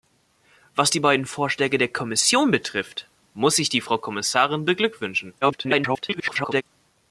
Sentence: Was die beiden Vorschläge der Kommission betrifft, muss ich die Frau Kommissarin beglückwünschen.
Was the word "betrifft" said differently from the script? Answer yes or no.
no